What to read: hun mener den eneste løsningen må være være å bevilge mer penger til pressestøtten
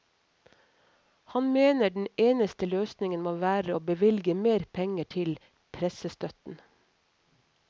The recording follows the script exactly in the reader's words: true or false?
false